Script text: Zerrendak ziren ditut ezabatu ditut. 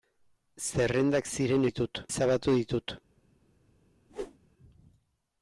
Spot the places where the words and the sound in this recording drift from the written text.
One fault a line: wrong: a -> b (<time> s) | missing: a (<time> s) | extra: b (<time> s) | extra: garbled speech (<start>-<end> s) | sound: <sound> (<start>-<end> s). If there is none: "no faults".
sound: whoosh (4.1-4.4 s)